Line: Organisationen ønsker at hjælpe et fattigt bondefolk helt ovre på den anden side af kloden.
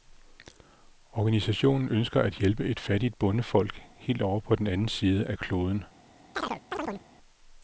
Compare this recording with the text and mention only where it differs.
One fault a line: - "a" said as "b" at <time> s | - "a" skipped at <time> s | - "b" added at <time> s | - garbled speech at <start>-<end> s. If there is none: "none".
none